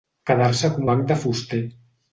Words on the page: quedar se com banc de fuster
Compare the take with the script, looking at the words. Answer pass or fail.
pass